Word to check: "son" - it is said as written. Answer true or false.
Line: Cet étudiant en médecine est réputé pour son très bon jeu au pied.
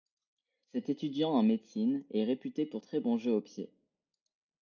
false